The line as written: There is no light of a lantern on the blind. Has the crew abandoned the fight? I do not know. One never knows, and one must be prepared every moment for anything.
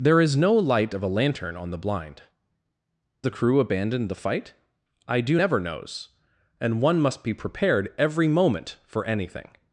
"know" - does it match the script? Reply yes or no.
no